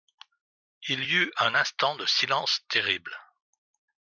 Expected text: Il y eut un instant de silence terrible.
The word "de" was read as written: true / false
true